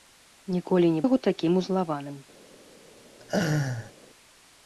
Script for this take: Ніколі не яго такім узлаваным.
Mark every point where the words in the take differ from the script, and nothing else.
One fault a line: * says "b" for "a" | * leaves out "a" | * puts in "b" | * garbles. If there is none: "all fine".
all fine